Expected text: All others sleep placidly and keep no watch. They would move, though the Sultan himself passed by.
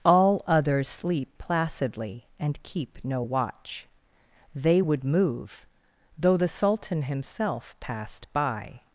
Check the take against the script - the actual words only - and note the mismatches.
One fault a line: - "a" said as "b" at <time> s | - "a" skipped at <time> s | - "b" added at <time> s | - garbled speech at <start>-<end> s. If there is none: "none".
none